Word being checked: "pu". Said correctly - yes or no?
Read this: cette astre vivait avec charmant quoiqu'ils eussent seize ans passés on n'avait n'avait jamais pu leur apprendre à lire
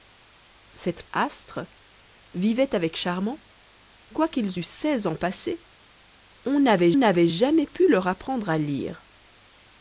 yes